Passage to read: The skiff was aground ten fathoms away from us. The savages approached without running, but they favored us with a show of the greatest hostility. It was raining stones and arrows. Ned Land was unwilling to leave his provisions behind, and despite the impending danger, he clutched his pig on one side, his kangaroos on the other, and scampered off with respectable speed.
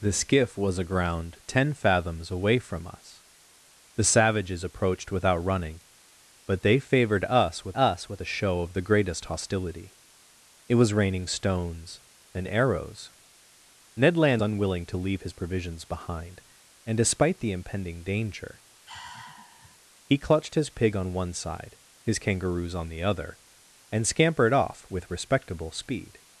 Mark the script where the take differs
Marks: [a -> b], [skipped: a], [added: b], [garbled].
The skiff was aground ten fathoms away from us. The savages approached without running, but they favored us with [added: us with] a show of the greatest hostility. It was raining stones and arrows. Ned Land [skipped: was] unwilling to leave his provisions behind, and despite the impending danger, he clutched his pig on one side, his kangaroos on the other, and scampered off with respectable speed.